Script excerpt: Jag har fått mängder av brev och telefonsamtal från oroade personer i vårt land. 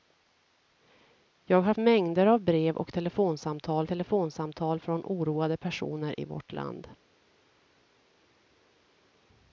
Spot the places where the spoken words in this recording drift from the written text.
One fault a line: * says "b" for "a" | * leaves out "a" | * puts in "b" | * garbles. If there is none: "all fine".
* leaves out "fått"
* puts in "telefonsamtal"